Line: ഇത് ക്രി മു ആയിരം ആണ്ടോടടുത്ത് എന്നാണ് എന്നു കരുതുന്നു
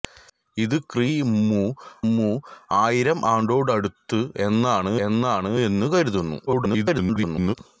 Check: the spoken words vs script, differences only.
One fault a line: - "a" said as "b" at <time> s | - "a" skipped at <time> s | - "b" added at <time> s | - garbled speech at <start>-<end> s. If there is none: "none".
- "മു" added at 2.1 s
- "എന്നാണ്" added at 5.1 s
- garbled speech at 6.5-7.5 s